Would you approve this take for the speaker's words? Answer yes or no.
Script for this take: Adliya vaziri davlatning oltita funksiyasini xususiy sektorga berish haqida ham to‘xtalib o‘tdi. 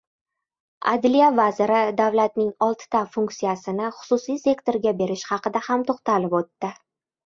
yes